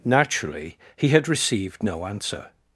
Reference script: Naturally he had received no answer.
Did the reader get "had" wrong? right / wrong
right